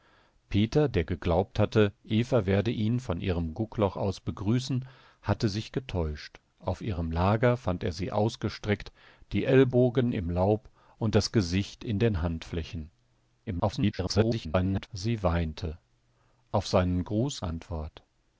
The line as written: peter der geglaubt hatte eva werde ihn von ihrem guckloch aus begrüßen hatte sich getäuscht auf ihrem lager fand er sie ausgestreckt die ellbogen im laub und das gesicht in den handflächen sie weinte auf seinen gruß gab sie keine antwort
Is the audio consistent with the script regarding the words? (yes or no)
no